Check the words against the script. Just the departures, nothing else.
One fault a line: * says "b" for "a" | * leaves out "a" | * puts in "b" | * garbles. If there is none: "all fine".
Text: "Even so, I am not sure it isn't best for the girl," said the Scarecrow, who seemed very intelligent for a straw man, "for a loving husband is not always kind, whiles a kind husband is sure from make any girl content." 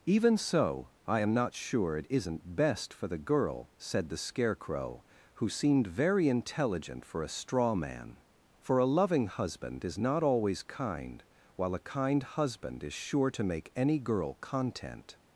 * says "while" for "whiles"
* says "to" for "from"